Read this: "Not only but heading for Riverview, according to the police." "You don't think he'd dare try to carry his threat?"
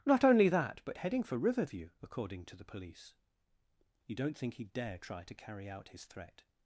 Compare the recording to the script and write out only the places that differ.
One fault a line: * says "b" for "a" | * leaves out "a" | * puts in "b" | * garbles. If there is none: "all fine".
* puts in "that"
* puts in "out"